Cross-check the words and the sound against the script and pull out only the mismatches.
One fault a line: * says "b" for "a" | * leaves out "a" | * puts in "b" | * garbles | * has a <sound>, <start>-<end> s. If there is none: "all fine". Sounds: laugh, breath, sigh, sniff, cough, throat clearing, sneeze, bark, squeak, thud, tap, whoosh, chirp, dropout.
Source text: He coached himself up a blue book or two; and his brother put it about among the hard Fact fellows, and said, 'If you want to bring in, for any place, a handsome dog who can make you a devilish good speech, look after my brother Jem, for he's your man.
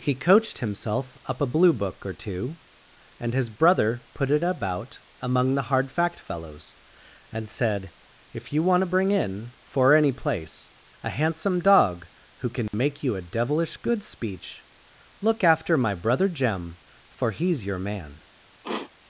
* has a dropout, 12.7-12.7 s
* has a sniff, 18.6-18.9 s